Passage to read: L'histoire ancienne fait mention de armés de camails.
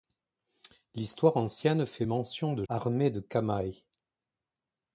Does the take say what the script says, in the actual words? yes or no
yes